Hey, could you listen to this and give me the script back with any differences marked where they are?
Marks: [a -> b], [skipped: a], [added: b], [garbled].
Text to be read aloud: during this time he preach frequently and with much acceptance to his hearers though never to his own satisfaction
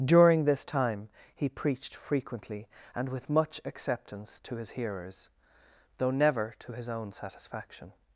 during this time he [preach -> preached] frequently and with much acceptance to his hearers though never to his own satisfaction